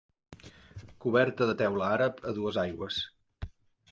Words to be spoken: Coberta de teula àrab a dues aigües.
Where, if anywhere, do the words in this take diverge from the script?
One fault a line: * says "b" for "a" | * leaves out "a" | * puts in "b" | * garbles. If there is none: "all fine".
all fine